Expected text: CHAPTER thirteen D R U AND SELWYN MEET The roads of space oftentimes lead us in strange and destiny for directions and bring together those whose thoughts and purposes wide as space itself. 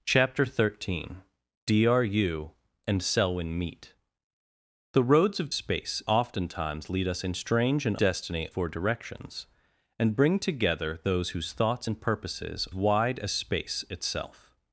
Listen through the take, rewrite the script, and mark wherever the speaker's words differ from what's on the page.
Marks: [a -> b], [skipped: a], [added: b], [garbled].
CHAPTER thirteen D R U AND SELWYN MEET The roads of space oftentimes lead us in strange and destiny for directions and bring together those whose thoughts and purposes wide as space itself.